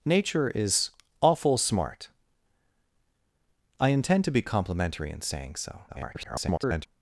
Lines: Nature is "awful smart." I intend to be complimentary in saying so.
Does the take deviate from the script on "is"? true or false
false